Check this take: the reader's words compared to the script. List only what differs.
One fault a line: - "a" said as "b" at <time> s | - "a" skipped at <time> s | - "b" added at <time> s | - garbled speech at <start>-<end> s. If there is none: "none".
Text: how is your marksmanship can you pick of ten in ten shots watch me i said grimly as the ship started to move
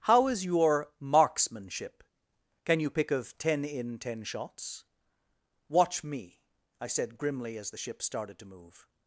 none